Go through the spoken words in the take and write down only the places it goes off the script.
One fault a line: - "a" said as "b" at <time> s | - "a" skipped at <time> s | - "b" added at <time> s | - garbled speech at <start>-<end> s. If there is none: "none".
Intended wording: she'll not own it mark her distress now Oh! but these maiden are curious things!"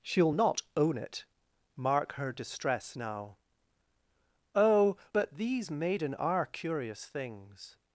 none